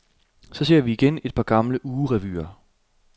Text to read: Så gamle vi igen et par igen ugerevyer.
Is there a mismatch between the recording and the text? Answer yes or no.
yes